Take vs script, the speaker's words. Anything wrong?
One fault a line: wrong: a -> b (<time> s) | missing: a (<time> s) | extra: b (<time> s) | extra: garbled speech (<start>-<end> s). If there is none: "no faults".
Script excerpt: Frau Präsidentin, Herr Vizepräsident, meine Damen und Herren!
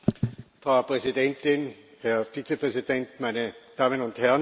no faults